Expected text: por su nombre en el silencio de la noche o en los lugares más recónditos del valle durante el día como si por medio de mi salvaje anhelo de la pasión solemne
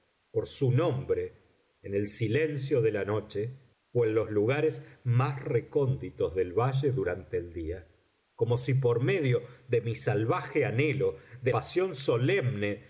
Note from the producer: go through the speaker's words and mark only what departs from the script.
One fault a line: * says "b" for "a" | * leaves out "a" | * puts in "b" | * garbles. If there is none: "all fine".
* leaves out "la"